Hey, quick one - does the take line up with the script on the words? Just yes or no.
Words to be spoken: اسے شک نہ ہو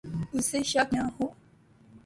yes